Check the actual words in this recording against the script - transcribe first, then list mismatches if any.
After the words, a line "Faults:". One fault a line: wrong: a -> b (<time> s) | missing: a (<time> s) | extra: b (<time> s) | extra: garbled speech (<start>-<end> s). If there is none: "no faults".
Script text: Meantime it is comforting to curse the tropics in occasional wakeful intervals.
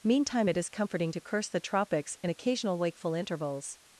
Meantime it is comforting to curse the tropics in occasional wakeful intervals.
Faults:
no faults